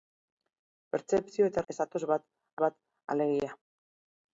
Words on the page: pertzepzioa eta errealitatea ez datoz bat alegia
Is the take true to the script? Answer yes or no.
no